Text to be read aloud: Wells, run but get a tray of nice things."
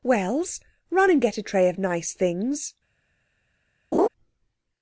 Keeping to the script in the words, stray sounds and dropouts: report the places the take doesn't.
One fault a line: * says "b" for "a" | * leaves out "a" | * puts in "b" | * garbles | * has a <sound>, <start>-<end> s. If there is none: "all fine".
* says "and" for "but"
* has a laugh, 3.9-4.1 s